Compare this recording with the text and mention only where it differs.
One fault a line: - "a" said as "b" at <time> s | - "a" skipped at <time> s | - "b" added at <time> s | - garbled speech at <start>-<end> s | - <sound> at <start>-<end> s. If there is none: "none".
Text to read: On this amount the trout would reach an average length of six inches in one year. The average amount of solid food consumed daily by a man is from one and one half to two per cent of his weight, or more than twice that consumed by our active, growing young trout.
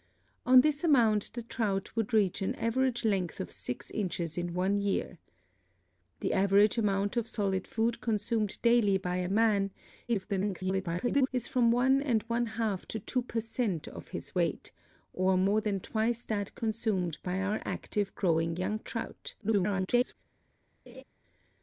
- garbled speech at 10.1-11.3 s
- garbled speech at 19.4-20.1 s
- laugh at 20.9-21.0 s